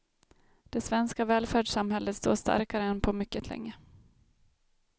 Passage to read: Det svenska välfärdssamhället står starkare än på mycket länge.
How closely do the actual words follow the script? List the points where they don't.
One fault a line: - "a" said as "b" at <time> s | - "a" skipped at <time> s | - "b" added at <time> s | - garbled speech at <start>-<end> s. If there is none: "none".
none